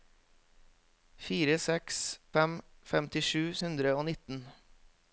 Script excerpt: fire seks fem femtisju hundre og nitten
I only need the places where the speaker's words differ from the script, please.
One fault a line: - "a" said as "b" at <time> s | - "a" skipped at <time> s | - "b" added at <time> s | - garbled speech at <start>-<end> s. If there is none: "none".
none